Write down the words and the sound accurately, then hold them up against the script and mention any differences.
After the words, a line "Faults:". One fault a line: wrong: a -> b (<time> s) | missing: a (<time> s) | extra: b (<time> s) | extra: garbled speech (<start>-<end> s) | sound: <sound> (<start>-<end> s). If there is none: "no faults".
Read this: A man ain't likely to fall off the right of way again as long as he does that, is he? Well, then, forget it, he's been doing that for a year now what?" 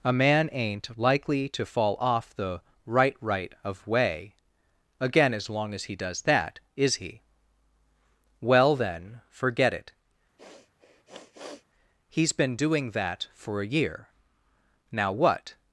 A man ain't likely to fall off the right right of way again as long as he does that, is he? Well, then, forget it, he's been doing that for a year now what?"
Faults:
extra: right (3.2 s)
sound: sniff (10.4-11.7 s)